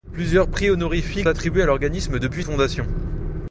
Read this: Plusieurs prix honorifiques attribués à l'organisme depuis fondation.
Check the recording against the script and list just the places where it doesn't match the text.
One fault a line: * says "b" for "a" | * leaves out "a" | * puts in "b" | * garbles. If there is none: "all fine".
all fine